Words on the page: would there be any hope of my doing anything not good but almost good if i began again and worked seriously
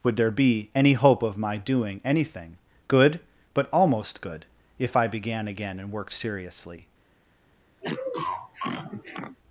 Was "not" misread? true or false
true